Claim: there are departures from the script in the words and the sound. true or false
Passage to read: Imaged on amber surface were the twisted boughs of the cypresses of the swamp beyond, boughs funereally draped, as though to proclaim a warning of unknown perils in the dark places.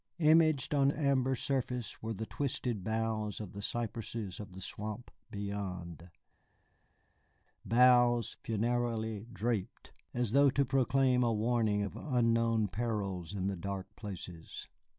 false